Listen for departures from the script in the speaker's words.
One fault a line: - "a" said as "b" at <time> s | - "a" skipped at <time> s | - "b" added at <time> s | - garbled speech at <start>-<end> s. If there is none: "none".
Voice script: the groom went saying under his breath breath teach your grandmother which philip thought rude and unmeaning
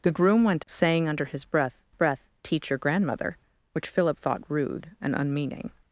none